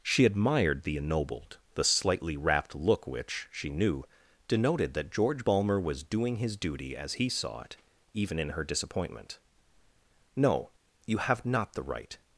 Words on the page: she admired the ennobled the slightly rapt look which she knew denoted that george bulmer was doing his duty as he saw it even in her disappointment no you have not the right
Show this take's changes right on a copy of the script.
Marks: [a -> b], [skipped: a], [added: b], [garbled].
she admired the ennobled the slightly rapt look which she knew denoted that george bulmer was doing his duty as he saw it even in her disappointment no you have not the right